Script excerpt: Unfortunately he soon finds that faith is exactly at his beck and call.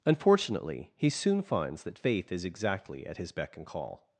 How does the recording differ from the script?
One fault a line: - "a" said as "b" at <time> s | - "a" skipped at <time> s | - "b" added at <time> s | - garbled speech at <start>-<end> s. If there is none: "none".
none